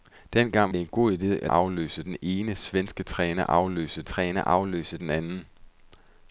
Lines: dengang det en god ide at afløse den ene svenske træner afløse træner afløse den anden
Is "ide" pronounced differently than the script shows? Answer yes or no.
no